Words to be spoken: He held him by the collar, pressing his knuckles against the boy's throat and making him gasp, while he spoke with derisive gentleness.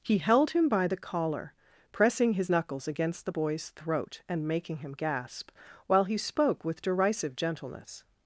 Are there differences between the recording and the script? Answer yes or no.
no